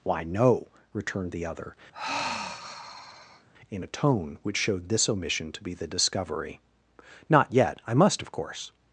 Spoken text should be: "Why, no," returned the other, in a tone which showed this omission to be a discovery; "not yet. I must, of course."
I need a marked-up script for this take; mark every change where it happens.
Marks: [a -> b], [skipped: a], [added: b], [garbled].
"Why, no," returned the other, in a tone which showed this omission to be [a -> the] discovery; "not yet. I must, of course."